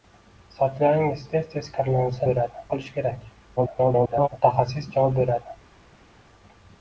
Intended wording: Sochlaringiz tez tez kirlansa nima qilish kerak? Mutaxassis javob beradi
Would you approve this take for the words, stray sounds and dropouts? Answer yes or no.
no